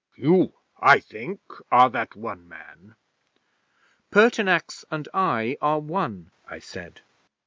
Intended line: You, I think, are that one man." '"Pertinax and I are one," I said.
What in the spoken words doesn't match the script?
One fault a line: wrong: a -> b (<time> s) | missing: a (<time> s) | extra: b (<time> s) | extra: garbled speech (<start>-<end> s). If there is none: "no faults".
no faults